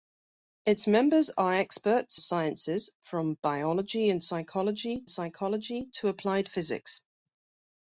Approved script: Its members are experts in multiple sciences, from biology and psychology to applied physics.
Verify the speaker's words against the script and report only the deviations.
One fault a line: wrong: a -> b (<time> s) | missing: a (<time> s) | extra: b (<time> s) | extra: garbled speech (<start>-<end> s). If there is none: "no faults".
missing: in multiple (2.2 s)
extra: psychology (5.1 s)